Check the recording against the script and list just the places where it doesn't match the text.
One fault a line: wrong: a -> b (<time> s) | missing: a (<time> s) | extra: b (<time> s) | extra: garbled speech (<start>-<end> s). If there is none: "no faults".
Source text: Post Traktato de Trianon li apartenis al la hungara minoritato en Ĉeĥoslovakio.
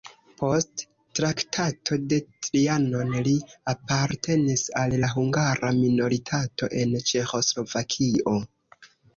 no faults